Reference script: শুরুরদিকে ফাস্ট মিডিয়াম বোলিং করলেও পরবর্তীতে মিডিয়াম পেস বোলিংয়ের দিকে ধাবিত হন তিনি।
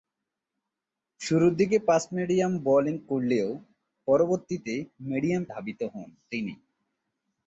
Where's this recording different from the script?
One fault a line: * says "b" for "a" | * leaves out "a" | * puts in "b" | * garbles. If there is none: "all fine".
* leaves out "পেস বোলিংয়ের দিকে"